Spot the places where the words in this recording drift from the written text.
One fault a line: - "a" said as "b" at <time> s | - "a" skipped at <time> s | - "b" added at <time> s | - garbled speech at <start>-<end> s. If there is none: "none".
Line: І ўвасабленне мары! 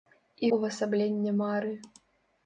none